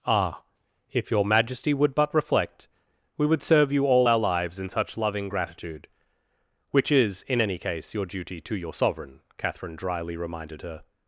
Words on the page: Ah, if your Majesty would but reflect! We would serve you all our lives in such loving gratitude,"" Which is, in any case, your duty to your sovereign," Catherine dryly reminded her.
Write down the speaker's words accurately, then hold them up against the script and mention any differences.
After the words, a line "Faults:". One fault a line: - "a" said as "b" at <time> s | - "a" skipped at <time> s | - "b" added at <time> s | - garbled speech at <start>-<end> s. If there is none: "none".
Ah, if your Majesty would but reflect! We would serve you all our lives in such loving gratitude,"" Which is, in any case, your duty to your sovereign," Catherine dryly reminded her.
Faults:
none